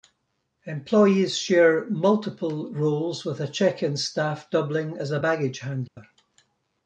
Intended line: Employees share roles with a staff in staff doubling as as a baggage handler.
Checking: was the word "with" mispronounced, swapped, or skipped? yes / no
no